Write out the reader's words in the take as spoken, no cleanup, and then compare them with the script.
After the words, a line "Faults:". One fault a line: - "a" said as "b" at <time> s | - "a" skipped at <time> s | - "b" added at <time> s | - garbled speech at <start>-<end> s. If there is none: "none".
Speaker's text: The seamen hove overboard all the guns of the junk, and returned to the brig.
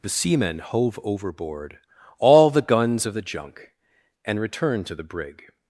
The seamen hove overboard all the guns of the junk, and returned to the brig.
Faults:
none